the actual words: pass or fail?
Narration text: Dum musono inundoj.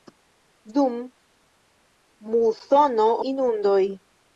pass